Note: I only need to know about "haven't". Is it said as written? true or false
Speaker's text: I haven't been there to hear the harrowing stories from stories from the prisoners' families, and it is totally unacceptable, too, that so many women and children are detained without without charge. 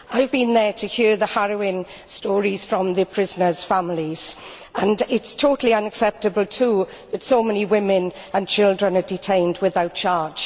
false